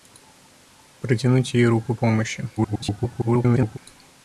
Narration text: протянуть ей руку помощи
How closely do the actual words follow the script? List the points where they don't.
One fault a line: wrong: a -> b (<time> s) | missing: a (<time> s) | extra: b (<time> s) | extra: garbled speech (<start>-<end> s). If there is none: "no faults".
extra: garbled speech (2.6-3.8 s)